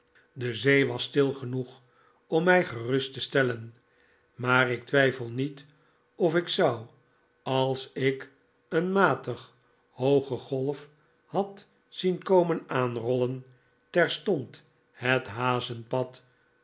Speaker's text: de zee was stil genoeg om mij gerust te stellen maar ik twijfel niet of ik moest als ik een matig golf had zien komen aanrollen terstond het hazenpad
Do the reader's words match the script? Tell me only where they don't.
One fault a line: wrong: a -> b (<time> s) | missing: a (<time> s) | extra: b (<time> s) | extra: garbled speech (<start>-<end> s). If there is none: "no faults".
wrong: moest -> zou (6.5 s)
extra: hooge (9.9 s)